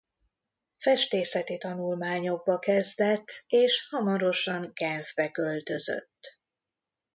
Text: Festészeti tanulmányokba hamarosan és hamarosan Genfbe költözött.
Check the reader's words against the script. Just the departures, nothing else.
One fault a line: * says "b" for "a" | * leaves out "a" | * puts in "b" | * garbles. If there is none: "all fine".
* says "kezdett" for "hamarosan"